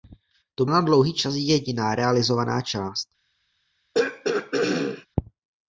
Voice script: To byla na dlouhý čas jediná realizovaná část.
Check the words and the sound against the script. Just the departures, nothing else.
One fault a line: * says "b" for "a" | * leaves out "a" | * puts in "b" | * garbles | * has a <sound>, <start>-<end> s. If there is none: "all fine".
* leaves out "byla"
* has a throat clearing, 3.9-5.1 s